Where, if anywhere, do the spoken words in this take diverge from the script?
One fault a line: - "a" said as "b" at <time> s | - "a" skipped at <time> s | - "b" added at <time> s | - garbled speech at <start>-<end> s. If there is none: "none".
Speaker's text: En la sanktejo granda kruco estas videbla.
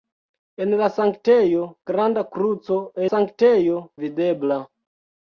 - "estas" said as "sanktejo" at 3.1 s